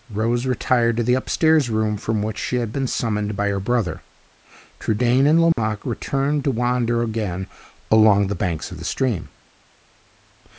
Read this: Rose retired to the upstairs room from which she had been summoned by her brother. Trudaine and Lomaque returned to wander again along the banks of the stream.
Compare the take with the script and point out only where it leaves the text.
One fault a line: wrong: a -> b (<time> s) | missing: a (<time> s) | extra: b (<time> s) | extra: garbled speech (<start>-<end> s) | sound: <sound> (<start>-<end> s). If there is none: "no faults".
sound: dropout (5.5-5.6 s)